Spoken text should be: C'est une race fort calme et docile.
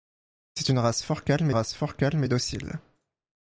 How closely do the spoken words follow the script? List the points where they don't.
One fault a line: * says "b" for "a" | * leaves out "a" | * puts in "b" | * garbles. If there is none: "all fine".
* puts in "race fort calme"